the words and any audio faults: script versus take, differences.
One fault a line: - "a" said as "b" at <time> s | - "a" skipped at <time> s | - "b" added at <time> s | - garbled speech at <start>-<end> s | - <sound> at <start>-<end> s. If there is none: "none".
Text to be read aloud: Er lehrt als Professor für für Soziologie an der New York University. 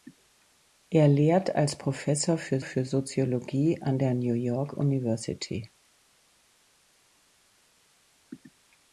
none